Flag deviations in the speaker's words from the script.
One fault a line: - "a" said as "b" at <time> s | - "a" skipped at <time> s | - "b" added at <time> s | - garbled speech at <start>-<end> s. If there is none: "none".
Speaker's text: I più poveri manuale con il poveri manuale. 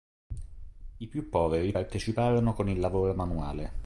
- "manuale" said as "parteciparono" at 1.7 s
- "poveri" said as "lavoro" at 2.8 s